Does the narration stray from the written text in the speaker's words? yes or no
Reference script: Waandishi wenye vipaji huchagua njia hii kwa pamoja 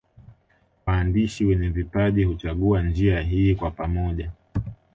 no